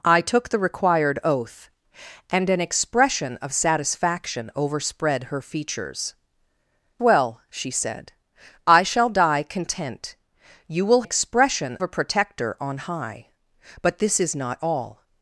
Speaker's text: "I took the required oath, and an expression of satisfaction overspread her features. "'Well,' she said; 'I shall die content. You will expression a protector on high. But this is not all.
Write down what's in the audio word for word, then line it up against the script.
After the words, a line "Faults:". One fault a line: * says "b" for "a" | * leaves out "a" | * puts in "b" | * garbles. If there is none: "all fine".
"I took the required oath, and an expression of satisfaction overspread her features. "'Well,' she said; 'I shall die content. You will expression a protector on high. But this is not all.
Faults:
all fine